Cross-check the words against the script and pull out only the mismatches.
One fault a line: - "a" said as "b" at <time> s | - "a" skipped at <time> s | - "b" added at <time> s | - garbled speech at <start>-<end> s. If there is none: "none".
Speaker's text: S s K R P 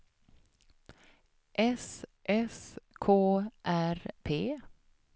none